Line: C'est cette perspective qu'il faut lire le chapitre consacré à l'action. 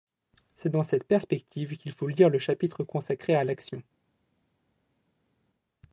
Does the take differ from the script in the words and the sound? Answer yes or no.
yes